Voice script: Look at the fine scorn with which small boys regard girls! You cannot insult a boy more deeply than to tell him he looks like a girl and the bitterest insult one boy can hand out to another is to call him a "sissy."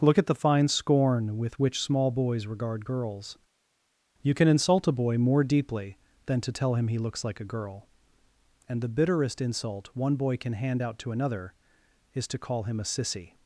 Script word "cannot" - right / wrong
wrong